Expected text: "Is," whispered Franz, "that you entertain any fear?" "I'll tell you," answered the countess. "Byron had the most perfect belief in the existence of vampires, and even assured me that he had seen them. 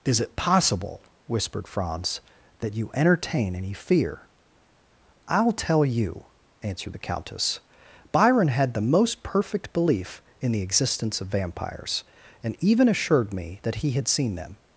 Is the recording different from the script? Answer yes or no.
yes